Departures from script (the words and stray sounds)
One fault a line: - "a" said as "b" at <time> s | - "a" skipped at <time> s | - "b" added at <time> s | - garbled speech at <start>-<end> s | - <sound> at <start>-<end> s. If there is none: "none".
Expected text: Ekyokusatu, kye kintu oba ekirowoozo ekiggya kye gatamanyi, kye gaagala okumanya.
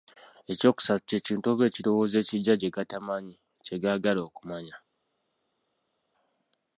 none